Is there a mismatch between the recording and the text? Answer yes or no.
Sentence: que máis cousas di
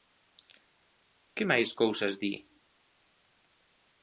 no